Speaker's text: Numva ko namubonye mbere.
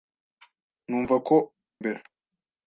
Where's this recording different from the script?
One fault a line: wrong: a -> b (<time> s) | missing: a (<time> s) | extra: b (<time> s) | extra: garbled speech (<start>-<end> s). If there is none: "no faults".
missing: namubonye (1.4 s)